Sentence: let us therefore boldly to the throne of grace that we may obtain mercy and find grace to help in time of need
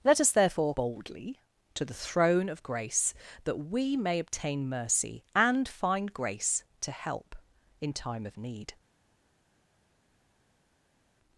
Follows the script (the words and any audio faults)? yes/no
yes